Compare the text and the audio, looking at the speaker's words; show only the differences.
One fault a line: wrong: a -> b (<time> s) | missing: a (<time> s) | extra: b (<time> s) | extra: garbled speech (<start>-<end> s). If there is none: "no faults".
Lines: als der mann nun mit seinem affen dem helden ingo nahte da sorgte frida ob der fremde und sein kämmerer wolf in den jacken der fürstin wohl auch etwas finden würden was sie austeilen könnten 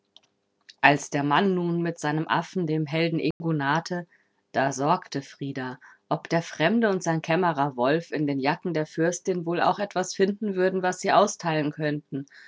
no faults